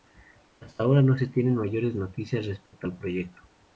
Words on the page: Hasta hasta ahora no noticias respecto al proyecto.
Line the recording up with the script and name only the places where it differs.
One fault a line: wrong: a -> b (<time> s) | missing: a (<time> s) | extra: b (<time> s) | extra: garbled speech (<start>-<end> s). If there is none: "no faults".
missing: hasta (0.8 s)
extra: se tienen mayores (1.1 s)